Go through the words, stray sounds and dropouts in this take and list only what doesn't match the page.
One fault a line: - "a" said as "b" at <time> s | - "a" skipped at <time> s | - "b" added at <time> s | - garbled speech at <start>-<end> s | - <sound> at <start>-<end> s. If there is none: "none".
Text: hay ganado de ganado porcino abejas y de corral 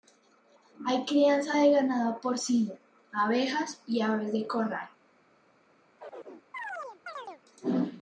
- "ganado" said as "crianza" at 1.1 s
- "aves" added at 4.0 s
- chirp at 6.0-7.4 s